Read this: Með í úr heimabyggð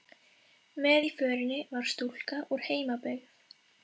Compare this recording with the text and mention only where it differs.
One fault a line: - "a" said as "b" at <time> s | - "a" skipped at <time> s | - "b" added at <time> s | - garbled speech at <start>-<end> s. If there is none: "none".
- "förinni var stúlka" added at 1.2 s